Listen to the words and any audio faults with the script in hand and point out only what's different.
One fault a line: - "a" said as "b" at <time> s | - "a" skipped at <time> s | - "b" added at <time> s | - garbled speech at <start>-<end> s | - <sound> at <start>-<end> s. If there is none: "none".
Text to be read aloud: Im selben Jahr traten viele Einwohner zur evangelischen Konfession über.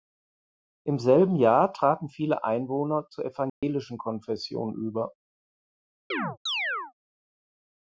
- dropout at 3.5-3.6 s
- chirp at 6.1-6.9 s